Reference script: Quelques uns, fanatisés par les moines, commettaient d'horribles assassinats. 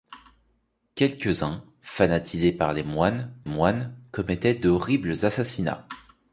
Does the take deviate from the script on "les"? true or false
false